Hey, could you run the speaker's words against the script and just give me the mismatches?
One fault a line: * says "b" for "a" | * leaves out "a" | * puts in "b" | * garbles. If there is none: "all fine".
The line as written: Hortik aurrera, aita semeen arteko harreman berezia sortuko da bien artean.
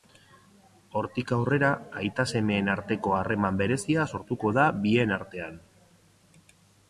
all fine